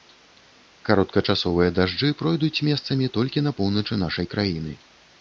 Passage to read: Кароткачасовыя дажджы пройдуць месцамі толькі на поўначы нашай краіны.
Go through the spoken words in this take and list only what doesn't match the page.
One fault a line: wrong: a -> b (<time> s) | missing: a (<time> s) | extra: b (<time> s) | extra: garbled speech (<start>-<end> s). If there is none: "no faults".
no faults